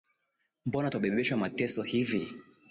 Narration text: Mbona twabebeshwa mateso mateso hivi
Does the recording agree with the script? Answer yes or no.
no